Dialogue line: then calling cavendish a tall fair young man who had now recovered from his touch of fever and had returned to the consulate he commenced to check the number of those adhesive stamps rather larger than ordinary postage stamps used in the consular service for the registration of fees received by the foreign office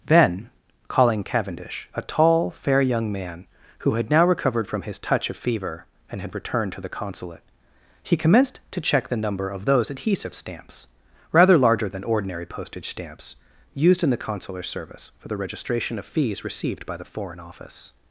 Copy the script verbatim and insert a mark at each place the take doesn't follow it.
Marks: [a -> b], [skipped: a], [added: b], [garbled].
then calling cavendish a tall fair young man who had now recovered from his touch of fever and had returned to the consulate he commenced to check the number of those adhesive stamps rather larger than ordinary postage stamps used in the consular service for the registration of fees received by the foreign office